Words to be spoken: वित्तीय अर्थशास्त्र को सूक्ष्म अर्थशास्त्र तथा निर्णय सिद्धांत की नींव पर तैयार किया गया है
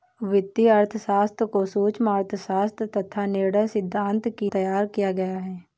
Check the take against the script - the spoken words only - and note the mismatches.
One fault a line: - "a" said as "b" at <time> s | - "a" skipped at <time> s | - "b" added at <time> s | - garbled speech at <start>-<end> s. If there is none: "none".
- "नींव पर" skipped at 4.5 s